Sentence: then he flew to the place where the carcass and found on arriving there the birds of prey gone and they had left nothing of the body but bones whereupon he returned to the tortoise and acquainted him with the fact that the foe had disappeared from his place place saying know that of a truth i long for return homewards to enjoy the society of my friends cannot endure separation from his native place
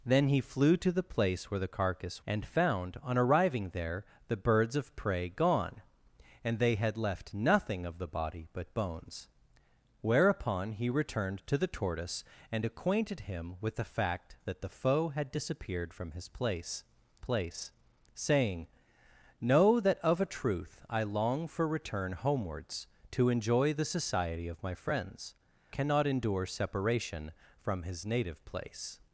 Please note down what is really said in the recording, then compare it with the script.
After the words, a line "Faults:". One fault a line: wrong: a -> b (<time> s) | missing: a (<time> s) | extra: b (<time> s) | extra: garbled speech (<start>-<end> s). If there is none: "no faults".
then he flew to the place where the carcass and found on arriving there the birds of prey gone and they had left nothing of the body but bones whereupon he returned to the tortoise and acquainted him with the fact that the foe had disappeared from his place place saying know that of a truth i long for return homewards to enjoy the society of my friends cannot endure separation from his native place
Faults:
no faults